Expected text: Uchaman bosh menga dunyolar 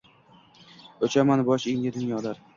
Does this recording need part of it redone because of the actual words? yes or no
no